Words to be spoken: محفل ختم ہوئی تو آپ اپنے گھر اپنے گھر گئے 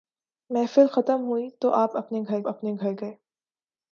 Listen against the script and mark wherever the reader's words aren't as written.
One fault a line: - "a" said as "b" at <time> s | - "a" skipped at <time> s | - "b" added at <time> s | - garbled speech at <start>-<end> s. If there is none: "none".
none